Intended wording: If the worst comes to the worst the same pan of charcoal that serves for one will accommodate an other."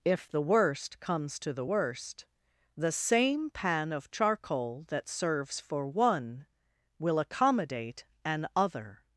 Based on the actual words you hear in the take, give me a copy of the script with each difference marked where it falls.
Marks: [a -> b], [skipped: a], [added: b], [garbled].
If the worst comes to the worst the same pan of charcoal that serves for one will accommodate an other."